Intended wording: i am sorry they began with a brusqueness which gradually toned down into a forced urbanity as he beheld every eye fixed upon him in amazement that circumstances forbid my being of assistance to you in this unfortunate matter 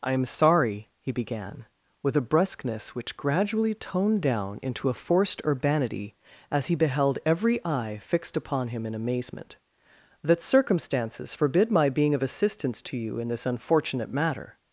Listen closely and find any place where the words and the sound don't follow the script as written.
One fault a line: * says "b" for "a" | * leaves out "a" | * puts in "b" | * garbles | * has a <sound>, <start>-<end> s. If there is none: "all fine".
* says "he" for "they"